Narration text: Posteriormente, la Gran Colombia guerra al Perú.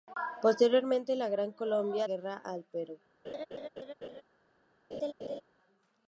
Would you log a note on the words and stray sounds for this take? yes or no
yes